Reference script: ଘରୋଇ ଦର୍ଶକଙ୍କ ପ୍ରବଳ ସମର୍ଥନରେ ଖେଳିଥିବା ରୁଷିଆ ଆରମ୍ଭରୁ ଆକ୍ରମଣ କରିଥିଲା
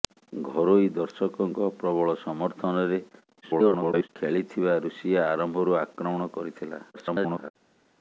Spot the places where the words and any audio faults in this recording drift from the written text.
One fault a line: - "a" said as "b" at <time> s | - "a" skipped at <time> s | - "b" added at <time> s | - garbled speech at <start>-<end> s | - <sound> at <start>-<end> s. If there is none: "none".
- garbled speech at 3.4-4.1 s
- garbled speech at 6.9-7.5 s